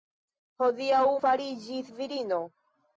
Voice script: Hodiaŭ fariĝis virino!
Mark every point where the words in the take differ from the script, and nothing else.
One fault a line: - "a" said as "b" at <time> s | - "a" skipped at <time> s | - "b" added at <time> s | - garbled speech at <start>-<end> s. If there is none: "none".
none